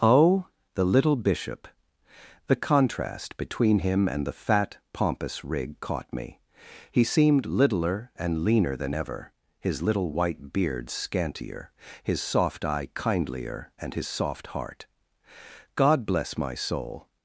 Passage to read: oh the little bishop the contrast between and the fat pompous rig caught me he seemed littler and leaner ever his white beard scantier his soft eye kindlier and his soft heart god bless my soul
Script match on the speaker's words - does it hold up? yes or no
no